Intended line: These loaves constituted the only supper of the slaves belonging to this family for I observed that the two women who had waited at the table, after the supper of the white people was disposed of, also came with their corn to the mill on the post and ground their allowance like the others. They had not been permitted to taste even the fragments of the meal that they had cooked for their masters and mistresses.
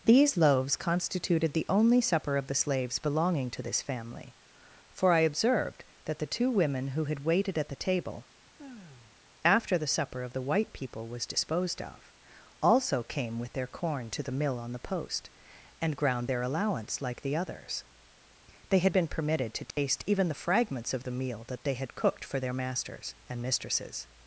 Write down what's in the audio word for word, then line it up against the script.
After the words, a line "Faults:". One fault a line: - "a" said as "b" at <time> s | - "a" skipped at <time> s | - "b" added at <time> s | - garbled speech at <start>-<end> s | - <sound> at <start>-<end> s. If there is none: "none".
These loaves constituted the only supper of the slaves belonging to this family for I observed that the two women who had waited at the table, after the supper of the white people was disposed of, also came with their corn to the mill on the post and ground their allowance like the others. They had been permitted to taste even the fragments of the meal that they had cooked for their masters and mistresses.
Faults:
- sigh at 8.6-9.2 s
- "not" skipped at 19.0 s
- dropout at 19.7-19.8 s